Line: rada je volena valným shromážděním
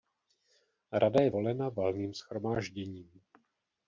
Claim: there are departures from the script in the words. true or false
false